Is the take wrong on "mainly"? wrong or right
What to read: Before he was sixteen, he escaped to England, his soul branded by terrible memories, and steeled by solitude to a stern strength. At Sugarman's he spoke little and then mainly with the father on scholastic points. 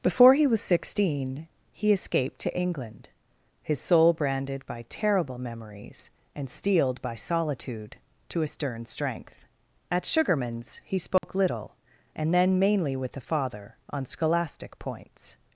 right